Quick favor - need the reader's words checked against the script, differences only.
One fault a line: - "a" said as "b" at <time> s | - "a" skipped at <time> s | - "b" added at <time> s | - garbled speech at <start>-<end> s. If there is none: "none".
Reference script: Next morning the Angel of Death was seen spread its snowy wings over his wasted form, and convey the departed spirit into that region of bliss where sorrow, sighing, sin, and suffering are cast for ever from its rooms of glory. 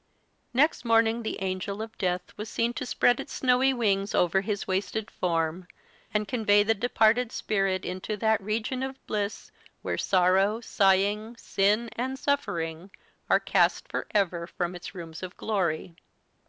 - "to" added at 2.7 s